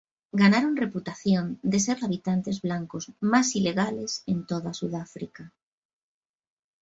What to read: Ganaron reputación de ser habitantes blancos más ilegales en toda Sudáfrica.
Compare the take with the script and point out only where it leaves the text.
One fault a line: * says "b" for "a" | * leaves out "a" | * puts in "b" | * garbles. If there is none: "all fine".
all fine